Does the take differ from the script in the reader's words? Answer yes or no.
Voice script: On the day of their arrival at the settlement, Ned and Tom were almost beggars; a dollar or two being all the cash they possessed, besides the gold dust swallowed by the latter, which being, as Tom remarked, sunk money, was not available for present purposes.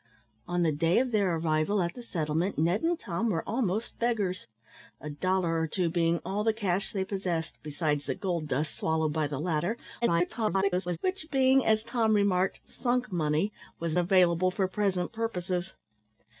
yes